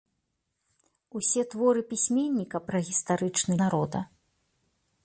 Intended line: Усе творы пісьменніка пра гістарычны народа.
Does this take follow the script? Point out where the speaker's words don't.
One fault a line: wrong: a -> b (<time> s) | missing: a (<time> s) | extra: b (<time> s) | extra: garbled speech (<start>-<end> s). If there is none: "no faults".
no faults